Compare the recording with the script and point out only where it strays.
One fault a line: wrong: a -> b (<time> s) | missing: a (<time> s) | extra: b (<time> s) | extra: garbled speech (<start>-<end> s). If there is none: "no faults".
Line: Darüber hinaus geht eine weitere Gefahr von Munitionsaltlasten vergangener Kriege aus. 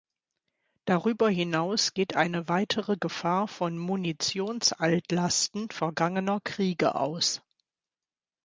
no faults